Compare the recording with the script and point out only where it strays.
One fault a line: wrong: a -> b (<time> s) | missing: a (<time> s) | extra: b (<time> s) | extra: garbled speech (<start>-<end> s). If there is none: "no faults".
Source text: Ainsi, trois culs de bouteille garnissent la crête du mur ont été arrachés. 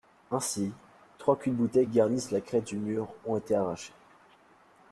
no faults